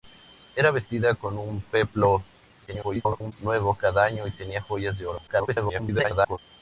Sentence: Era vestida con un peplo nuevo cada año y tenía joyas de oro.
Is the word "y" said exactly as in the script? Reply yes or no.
yes